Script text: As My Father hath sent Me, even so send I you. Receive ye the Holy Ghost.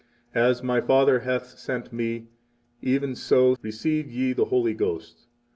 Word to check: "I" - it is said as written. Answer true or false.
false